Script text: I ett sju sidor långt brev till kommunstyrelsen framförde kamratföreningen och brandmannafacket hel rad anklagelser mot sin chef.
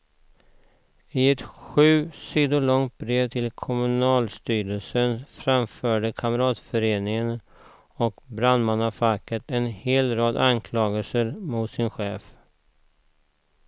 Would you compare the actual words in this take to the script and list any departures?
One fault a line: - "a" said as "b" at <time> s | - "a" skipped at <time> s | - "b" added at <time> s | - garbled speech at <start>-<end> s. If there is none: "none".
- "en" added at 9.5 s